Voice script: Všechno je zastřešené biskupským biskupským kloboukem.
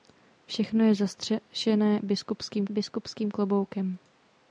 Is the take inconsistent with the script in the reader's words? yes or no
no